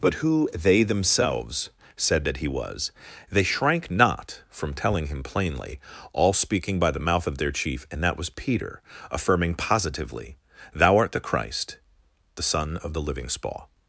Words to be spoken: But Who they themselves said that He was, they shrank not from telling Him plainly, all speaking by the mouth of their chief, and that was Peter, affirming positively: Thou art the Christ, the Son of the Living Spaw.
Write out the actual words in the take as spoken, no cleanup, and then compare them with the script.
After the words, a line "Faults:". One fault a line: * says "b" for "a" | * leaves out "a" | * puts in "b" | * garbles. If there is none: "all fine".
But Who they themselves said that He was, they shrank not from telling Him plainly, all speaking by the mouth of their chief, and that was Peter, affirming positively: Thou art the Christ, the Son of the Living Spaw.
Faults:
all fine